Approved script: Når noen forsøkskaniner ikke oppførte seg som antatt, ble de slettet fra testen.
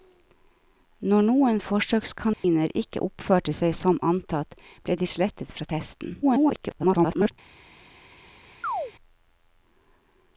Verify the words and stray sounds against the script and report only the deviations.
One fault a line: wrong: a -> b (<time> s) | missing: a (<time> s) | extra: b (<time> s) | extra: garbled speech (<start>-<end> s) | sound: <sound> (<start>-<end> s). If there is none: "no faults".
sound: dropout (2.3-2.4 s)
extra: garbled speech (6.2-7.3 s)
sound: chirp (8.6-8.9 s)